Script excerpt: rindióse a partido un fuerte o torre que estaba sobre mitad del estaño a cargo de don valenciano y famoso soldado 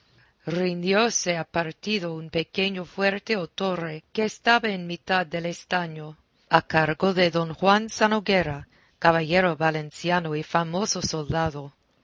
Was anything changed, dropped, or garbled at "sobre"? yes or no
yes